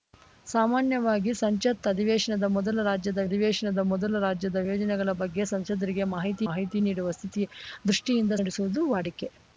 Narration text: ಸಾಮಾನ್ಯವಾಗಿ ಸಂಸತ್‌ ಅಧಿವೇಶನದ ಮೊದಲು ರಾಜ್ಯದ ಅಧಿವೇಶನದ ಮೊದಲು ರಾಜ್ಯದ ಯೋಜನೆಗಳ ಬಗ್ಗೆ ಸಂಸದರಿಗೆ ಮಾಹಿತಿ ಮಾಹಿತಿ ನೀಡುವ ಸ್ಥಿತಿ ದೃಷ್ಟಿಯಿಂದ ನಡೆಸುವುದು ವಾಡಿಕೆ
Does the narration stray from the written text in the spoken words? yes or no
no